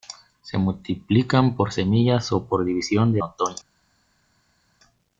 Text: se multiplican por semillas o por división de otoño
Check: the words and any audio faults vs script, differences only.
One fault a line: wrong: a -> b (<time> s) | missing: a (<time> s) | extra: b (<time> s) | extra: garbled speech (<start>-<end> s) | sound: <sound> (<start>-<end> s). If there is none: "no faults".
no faults